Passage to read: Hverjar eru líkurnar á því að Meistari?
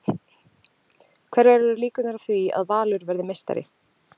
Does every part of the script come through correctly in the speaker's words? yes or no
no